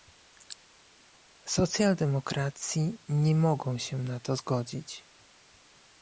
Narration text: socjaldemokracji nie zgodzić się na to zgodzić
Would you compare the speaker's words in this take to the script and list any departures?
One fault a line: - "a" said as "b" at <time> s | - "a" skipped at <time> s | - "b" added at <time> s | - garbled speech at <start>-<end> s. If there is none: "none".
- "zgodzić" said as "mogą" at 3.4 s